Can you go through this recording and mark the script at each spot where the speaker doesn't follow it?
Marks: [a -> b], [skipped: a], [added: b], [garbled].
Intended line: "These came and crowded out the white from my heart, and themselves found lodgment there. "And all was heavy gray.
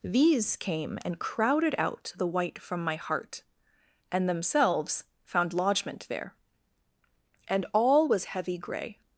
"These came and crowded out the white from my heart, and themselves found lodgment there. "And all was heavy gray.